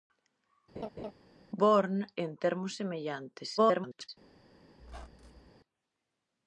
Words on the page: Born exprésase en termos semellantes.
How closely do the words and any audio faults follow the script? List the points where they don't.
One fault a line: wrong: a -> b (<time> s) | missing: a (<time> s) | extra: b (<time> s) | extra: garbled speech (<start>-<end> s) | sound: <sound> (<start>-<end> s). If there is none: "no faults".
sound: laugh (0.8-1.1 s)
missing: exprésase (2.0 s)
extra: garbled speech (3.6-4.1 s)
sound: squeak (4.8-5.5 s)